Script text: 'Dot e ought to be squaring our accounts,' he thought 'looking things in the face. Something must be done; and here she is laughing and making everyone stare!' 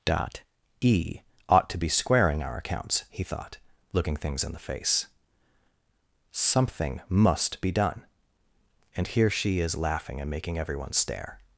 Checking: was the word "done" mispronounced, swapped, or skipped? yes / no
no